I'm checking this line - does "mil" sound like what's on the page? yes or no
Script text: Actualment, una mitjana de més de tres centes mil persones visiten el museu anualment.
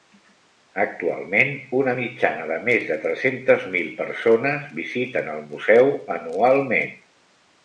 yes